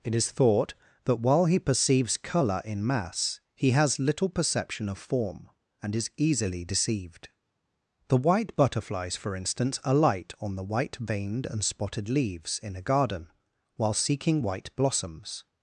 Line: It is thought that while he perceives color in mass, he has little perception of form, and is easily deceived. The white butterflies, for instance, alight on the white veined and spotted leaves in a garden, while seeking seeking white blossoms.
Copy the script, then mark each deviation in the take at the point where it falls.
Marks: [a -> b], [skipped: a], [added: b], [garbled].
It is thought that while he perceives color in mass, he has little perception of form, and is easily deceived. The white butterflies, for instance, alight on the white veined and spotted leaves in a garden, while seeking [skipped: seeking] white blossoms.